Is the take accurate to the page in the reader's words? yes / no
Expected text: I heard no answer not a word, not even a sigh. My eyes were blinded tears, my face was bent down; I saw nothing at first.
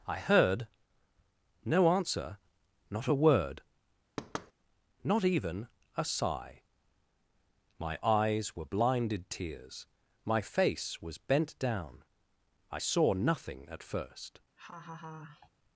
yes